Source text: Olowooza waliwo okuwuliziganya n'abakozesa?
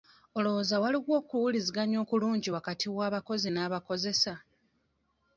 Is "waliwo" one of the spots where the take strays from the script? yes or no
no